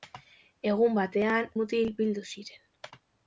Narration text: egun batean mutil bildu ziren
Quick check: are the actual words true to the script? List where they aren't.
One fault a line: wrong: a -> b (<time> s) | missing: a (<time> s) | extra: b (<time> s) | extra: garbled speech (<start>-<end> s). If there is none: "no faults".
no faults